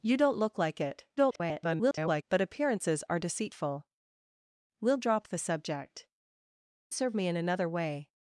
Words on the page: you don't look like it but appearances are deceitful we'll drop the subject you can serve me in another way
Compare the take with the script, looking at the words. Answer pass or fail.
fail